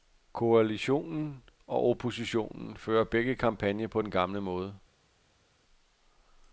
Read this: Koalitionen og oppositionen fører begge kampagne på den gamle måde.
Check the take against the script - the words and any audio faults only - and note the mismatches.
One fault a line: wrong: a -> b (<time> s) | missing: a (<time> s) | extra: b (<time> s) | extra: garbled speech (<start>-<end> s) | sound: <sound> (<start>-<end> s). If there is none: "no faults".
no faults